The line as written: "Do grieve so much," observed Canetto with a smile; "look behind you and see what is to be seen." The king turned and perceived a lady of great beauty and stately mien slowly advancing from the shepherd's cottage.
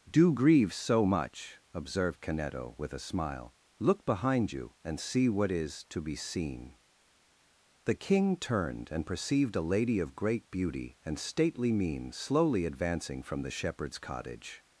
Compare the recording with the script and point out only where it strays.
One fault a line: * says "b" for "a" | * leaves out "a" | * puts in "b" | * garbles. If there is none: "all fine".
all fine